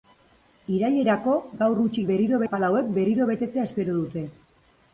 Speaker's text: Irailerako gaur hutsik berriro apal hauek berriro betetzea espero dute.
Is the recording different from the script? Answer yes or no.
no